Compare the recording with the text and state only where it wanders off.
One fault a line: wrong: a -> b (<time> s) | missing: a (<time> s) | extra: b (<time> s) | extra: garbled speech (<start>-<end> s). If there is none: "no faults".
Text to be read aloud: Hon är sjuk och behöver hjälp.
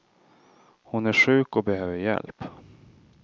no faults